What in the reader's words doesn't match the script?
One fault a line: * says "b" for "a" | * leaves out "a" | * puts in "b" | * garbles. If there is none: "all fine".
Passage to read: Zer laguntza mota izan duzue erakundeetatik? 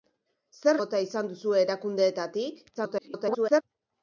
* leaves out "laguntza"
* garbles